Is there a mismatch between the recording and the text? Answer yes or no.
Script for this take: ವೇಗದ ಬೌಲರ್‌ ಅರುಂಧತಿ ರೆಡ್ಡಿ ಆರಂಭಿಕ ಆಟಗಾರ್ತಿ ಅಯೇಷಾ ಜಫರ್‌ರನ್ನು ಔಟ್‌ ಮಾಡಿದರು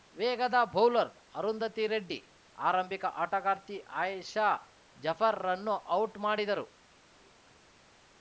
no